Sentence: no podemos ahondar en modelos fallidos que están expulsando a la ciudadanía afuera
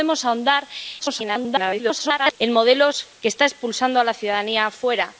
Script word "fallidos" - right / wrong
wrong